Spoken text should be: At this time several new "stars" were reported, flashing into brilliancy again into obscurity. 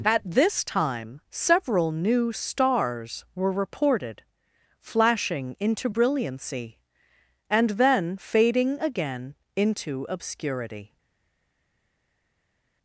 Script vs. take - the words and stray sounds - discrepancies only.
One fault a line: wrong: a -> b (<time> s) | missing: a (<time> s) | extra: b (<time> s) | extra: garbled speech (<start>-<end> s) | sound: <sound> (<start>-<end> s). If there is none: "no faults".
extra: and then fading (7.5 s)